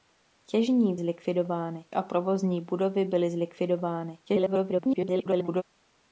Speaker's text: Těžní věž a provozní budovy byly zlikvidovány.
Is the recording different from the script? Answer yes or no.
yes